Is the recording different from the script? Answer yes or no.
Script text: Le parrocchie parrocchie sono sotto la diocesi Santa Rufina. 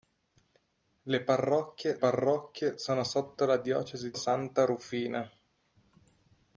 no